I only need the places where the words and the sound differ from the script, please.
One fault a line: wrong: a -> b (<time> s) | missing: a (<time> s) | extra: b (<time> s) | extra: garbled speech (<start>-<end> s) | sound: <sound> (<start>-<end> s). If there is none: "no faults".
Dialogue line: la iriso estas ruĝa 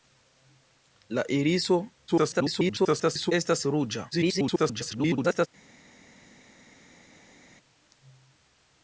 extra: garbled speech (2.1-3.3 s)
extra: garbled speech (4.1-5.5 s)